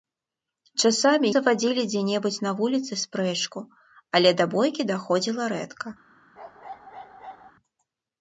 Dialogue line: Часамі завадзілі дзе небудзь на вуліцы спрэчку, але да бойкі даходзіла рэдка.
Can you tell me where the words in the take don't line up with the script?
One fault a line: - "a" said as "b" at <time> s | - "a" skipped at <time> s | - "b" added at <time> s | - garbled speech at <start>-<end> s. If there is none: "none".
none